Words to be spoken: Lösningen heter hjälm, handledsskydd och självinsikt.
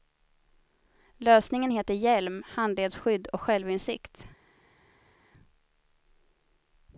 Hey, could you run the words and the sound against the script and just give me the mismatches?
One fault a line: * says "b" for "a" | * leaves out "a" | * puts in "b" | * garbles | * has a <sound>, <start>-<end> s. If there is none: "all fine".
all fine